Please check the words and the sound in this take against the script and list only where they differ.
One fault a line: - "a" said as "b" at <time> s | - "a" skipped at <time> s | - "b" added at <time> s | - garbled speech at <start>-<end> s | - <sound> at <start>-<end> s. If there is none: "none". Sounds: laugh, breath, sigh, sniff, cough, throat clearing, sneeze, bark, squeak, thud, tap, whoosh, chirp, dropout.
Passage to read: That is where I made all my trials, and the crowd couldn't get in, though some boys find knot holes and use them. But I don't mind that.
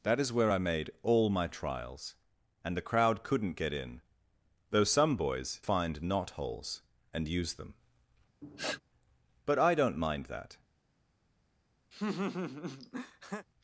- sniff at 8.4-8.8 s
- laugh at 11.9-13.5 s